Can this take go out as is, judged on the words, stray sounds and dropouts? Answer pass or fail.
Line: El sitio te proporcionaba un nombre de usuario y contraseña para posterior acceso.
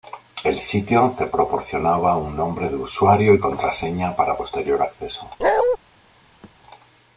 fail